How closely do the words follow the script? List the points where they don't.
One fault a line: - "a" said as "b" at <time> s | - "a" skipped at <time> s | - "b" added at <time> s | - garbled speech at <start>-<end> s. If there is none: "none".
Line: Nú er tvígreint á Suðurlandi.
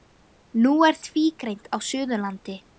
none